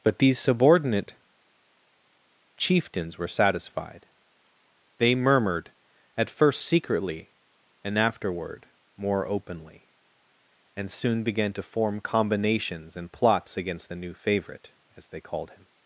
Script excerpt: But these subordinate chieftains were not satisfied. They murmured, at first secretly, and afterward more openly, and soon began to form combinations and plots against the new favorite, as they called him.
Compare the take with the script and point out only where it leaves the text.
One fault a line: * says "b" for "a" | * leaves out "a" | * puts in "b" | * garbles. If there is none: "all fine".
* leaves out "not"